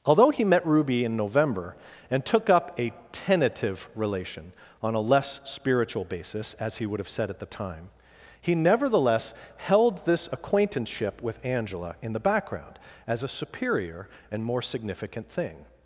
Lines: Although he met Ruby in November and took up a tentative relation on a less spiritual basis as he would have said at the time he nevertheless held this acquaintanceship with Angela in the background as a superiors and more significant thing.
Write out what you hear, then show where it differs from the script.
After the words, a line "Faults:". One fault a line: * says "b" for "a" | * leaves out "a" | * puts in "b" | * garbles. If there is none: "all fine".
Although he met Ruby in November and took up a tentative relation on a less spiritual basis as he would have said at the time he nevertheless held this acquaintanceship with Angela in the background as a superior and more significant thing.
Faults:
* says "superior" for "superiors"